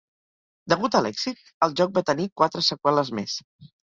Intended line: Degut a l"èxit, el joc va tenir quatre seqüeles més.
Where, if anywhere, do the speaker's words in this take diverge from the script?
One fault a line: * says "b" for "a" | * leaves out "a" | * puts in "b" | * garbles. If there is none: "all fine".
all fine